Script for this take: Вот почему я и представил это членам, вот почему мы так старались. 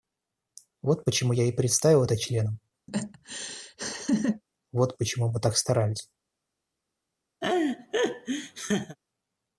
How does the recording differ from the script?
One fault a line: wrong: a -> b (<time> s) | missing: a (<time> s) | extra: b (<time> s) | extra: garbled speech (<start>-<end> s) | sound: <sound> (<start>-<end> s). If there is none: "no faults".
sound: laugh (2.9-4.4 s)
sound: laugh (7.4-9.0 s)